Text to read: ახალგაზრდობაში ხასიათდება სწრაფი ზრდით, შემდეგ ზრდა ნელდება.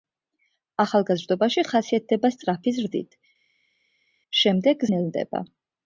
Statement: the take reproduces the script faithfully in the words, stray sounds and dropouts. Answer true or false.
false